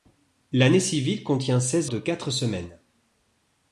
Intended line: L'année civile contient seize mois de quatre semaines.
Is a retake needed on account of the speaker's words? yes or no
yes